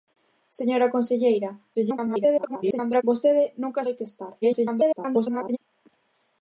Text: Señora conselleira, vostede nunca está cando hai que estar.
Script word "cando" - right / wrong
wrong